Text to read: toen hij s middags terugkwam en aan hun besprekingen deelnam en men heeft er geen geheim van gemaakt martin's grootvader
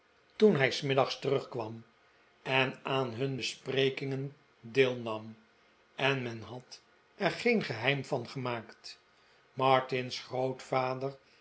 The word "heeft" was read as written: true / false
false